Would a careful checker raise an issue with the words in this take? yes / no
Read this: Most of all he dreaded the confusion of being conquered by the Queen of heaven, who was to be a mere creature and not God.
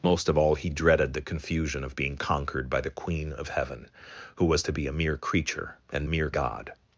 yes